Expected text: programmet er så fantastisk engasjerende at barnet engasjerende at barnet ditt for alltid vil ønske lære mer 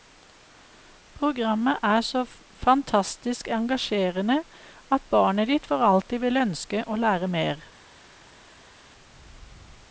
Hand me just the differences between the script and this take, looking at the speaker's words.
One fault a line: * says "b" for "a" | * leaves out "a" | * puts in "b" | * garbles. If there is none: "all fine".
* leaves out "engasjerende at barnet"
* puts in "å"